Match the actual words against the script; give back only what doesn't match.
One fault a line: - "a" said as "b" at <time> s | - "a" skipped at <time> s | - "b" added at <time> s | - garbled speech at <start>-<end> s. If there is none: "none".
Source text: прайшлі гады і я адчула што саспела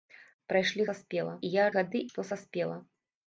- "гады" said as "саспела" at 0.9 s
- "адчула" said as "гады" at 1.7 s